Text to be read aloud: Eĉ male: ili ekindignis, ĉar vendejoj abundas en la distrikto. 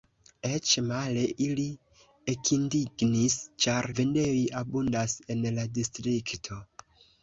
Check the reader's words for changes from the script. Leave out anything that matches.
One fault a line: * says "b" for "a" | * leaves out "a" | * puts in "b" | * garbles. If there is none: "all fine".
all fine